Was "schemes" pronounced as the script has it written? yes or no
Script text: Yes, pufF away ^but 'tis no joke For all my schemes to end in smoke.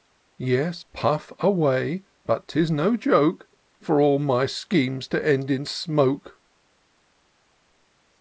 yes